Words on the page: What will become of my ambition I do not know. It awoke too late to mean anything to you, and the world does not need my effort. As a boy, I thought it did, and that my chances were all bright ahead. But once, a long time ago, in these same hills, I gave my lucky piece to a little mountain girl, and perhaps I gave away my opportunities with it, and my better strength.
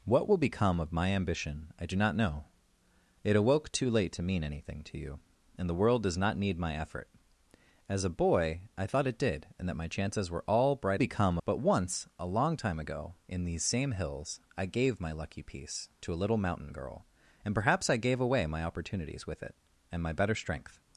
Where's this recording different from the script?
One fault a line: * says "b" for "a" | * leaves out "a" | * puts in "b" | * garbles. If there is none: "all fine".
* says "become" for "ahead"